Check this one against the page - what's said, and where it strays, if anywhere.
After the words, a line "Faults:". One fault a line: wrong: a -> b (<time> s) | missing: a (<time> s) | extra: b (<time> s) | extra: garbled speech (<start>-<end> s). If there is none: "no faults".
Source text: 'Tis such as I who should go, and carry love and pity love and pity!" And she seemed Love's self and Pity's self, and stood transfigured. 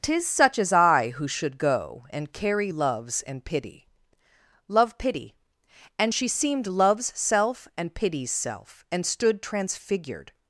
'Tis such as I who should go, and carry loves and pity love pity!" And she seemed Love's self and Pity's self, and stood transfigured.
Faults:
wrong: love -> loves (2.7 s)
missing: and (5.0 s)